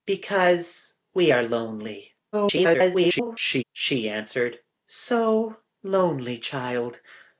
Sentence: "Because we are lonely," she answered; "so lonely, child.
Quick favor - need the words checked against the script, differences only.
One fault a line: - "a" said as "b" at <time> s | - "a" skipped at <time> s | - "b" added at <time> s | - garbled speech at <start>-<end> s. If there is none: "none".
- garbled speech at 2.3-3.6 s